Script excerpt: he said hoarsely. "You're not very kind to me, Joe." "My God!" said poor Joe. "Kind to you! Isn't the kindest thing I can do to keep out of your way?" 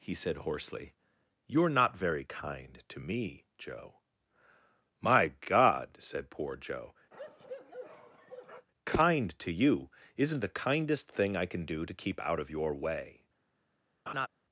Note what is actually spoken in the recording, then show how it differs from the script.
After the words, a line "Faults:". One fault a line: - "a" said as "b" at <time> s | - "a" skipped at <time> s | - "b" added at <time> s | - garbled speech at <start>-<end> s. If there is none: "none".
he said hoarsely. "You're not very kind to me, Joe." "My God!" said poor Joe. "Kind to you! Isn't the kindest thing I can do to keep out of your way?"
Faults:
none